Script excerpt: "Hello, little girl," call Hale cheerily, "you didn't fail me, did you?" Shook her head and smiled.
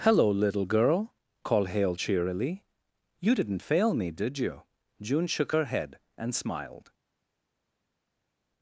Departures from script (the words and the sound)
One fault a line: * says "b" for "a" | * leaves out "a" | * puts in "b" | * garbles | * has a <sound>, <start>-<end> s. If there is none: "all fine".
* says "called" for "call"
* puts in "June"